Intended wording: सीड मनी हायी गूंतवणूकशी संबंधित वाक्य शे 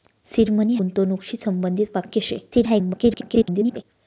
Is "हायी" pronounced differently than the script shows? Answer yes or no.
yes